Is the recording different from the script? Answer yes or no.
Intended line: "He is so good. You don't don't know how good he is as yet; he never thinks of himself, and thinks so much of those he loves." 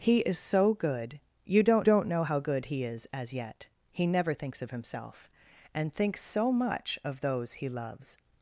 no